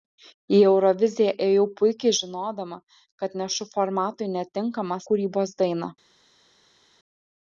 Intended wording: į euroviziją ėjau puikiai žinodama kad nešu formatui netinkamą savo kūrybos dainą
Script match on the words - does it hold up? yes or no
no